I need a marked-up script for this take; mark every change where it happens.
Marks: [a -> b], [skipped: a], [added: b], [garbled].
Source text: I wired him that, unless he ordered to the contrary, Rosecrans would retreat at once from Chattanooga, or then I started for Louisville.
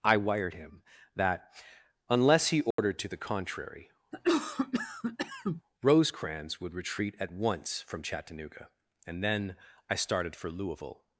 I wired him that, unless he ordered to the contrary, Rosecrans would retreat at once from Chattanooga, [or -> and] then I started for Louisville.